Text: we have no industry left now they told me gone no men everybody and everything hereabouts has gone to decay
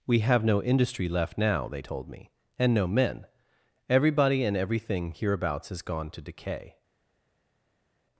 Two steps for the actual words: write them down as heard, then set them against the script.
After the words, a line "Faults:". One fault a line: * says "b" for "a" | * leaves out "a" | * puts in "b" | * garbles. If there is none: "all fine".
we have no industry left now they told me and no men everybody and everything hereabouts has gone to decay
Faults:
* says "and" for "gone"